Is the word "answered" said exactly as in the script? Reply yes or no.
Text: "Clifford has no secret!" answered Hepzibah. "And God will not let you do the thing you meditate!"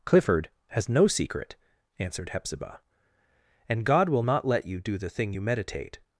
yes